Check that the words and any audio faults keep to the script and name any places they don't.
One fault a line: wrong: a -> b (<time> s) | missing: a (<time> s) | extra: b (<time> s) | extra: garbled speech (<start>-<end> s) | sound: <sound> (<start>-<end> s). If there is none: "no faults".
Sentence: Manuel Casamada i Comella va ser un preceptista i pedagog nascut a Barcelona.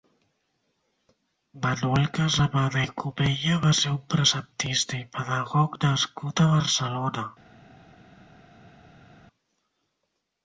no faults